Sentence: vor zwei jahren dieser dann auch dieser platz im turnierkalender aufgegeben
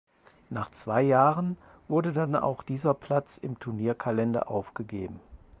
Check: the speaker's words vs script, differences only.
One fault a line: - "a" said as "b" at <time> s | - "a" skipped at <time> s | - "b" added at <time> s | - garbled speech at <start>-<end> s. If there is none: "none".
- "vor" said as "nach" at 0.5 s
- "dieser" said as "wurde" at 1.9 s